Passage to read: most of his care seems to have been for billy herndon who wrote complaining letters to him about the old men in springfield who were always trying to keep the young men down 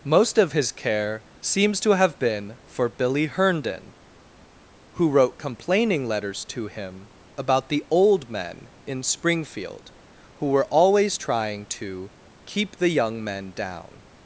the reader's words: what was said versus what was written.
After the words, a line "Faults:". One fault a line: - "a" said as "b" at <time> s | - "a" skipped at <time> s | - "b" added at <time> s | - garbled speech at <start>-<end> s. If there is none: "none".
most of his care seems to have been for billy herndon who wrote complaining letters to him about the old men in springfield who were always trying to keep the young men down
Faults:
none